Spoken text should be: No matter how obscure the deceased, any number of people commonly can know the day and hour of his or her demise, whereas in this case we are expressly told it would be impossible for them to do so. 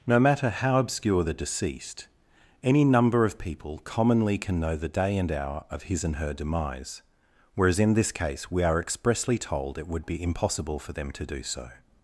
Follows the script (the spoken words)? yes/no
no